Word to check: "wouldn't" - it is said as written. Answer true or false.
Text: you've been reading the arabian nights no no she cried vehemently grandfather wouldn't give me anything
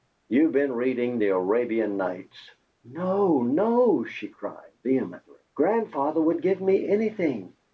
false